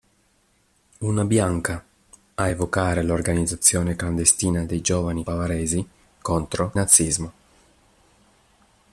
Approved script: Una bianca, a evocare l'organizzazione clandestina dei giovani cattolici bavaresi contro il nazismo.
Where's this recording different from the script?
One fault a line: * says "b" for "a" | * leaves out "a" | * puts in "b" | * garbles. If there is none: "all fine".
* leaves out "cattolici"
* leaves out "il"